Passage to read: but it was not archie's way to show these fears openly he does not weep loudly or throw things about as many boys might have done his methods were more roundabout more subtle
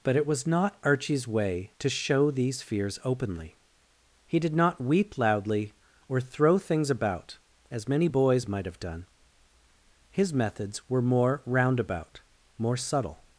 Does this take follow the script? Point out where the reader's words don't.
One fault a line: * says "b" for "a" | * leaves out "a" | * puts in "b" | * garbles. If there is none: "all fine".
* says "did" for "does"